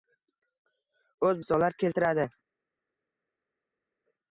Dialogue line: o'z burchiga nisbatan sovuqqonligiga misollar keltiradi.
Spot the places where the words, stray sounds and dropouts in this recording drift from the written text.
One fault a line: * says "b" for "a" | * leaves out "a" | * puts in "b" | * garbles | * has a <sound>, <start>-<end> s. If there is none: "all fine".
* leaves out "burchiga nisbatan sovuqqonligiga"